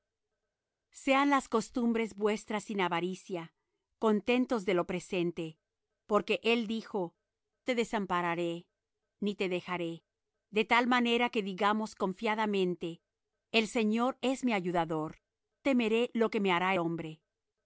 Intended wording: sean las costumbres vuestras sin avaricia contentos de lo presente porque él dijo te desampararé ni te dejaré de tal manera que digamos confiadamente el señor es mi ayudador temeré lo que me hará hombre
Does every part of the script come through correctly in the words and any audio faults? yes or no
yes